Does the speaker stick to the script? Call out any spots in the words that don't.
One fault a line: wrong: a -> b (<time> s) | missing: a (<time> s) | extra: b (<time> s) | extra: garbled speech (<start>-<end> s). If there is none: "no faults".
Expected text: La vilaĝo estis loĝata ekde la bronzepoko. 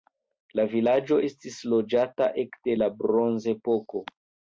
no faults